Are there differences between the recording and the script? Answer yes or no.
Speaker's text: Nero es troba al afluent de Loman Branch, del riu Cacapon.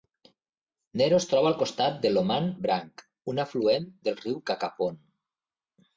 yes